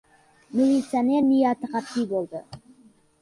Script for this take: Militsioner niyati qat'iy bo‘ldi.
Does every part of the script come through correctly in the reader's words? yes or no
yes